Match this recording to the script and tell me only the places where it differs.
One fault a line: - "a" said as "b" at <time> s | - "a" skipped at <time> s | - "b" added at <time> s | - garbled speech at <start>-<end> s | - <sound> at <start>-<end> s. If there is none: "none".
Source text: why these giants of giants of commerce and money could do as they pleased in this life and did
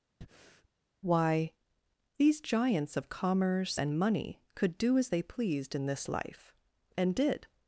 - breath at 0.2-0.7 s
- "giants of" skipped at 3.1 s